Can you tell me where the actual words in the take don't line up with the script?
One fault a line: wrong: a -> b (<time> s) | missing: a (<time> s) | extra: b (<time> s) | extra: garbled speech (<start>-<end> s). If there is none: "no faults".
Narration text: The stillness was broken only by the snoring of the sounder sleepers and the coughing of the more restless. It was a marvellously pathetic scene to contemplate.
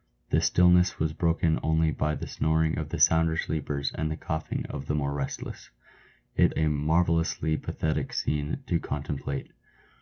missing: was (6.5 s)